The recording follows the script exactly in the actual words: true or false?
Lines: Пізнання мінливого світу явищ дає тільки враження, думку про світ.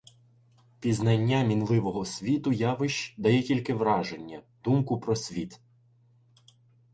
true